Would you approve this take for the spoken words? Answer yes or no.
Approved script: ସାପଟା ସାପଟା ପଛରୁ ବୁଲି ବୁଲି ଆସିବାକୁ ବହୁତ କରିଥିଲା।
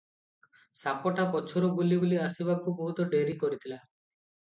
no